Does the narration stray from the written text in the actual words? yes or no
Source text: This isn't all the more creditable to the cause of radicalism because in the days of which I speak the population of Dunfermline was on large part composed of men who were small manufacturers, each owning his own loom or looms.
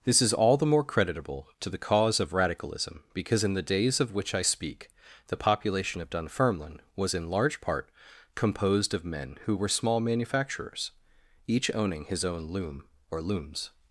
yes